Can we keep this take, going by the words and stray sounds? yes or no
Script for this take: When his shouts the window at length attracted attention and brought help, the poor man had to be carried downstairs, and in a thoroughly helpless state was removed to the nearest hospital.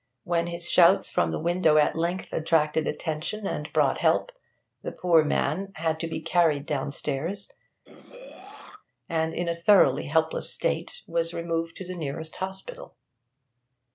no